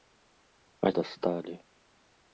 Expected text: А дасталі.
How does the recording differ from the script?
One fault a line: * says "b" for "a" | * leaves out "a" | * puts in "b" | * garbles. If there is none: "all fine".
all fine